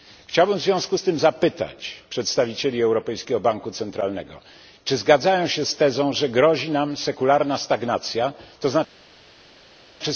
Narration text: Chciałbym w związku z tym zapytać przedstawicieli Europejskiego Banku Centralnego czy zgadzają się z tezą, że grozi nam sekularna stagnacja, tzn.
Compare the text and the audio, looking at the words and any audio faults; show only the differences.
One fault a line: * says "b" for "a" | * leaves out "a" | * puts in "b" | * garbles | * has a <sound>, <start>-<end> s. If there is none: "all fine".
all fine